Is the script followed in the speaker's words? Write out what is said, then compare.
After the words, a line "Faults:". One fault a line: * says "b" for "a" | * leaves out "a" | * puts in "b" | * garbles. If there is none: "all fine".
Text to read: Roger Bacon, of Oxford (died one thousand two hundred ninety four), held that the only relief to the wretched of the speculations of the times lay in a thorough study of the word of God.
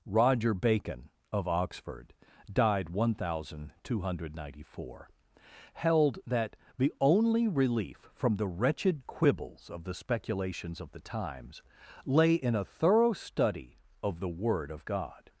Roger Bacon, of Oxford (died one thousand two hundred ninety four), held that the only relief from the wretched quibbles of the speculations of the times lay in a thorough study of the word of God.
Faults:
* says "from" for "to"
* puts in "quibbles"